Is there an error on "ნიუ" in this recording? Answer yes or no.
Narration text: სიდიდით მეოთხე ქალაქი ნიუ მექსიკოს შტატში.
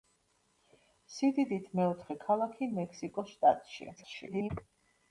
yes